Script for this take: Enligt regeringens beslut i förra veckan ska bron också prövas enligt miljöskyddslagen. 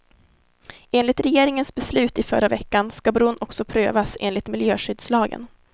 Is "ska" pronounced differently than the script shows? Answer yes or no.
no